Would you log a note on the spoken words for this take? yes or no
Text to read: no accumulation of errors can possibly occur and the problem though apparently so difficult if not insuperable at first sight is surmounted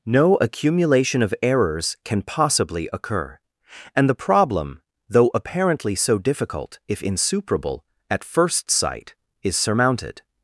yes